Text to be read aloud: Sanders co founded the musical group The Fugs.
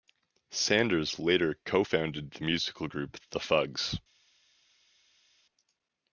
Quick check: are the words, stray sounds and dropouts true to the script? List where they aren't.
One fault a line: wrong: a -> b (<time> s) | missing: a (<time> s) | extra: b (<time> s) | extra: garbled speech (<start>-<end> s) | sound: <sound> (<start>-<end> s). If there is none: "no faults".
extra: later (1.2 s)